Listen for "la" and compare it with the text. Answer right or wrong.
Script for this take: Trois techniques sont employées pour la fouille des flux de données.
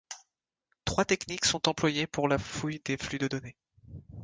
right